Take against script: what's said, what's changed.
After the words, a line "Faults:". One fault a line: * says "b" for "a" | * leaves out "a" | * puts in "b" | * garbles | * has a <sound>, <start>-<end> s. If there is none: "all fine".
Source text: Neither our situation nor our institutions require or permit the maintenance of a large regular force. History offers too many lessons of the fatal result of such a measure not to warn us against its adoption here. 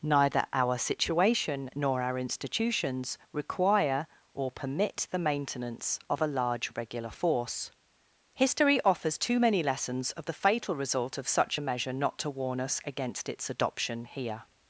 Neither our situation nor our institutions require or permit the maintenance of a large regular force. History offers too many lessons of the fatal result of such a measure not to warn us against its adoption here.
Faults:
all fine